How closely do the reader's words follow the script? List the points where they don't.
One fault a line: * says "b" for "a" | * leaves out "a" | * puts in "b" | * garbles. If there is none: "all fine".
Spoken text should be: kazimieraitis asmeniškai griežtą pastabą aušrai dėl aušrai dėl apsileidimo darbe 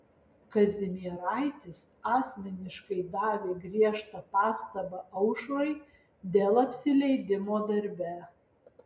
* puts in "davė"
* leaves out "aušrai dėl"